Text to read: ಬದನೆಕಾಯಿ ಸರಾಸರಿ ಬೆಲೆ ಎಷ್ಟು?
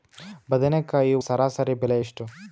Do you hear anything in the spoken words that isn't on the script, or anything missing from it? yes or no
no